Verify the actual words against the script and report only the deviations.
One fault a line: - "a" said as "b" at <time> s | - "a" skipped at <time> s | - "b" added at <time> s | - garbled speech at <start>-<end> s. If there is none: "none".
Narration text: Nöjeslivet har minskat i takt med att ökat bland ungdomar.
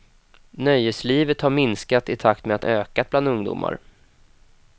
none